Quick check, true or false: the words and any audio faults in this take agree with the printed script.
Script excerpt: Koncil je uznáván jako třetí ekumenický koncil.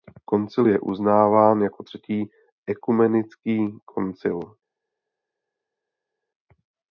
true